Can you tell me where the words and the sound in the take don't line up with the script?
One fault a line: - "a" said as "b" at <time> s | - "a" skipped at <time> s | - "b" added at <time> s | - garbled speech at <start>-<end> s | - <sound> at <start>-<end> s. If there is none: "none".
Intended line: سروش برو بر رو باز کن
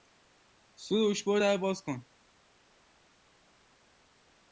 - "بر" said as "در" at 1.4 s